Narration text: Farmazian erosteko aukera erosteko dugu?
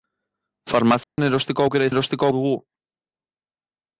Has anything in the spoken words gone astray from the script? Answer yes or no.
no